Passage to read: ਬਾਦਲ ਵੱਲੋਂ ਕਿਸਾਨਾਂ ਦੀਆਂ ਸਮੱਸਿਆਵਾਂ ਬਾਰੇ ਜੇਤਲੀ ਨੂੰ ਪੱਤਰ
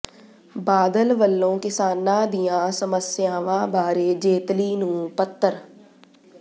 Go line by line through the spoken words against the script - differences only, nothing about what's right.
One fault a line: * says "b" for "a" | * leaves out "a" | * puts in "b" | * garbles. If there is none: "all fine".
all fine